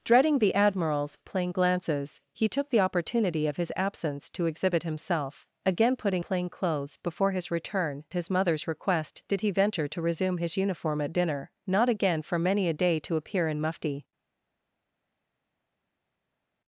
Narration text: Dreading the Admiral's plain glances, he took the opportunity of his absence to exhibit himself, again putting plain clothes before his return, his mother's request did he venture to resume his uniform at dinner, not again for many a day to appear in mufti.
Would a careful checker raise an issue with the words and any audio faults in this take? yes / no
no